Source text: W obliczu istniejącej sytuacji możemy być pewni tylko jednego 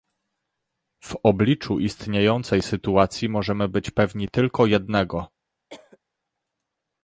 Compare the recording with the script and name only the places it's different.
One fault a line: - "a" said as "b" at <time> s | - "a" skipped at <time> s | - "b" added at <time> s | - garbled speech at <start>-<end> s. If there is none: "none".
none